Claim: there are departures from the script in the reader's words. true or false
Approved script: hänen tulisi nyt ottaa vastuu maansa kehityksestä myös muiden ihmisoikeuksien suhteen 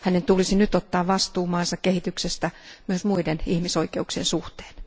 false